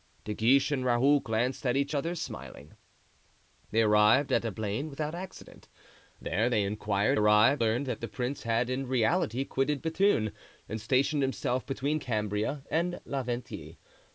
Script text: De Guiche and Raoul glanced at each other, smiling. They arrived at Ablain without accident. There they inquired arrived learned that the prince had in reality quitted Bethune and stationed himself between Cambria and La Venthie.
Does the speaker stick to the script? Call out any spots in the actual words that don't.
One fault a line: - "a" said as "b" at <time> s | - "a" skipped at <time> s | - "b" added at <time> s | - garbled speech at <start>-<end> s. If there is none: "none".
none